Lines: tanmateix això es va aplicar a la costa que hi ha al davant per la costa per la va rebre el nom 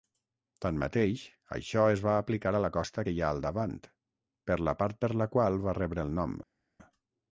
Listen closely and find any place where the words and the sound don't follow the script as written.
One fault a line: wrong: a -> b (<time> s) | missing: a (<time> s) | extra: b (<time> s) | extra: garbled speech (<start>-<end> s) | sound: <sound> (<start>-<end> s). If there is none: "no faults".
wrong: costa -> part (4.8 s)
extra: qual (5.4 s)